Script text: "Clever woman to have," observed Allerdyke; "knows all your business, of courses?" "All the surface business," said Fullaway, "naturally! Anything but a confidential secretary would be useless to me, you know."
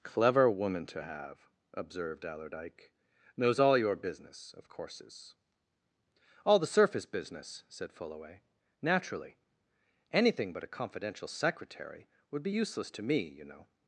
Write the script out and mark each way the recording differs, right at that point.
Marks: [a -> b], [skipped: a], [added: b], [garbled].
"Clever woman to have," observed Allerdyke; "knows all your business, of courses?" "All the surface business," said Fullaway, "naturally! Anything but a confidential secretary would be useless to me, you know."